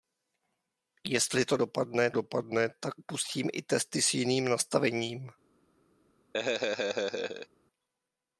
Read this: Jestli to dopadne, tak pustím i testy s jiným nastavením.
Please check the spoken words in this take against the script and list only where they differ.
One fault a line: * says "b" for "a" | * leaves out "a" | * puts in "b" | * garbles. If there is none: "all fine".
* puts in "dopadne"